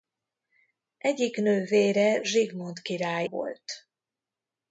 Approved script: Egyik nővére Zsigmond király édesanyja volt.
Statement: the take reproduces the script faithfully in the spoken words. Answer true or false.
false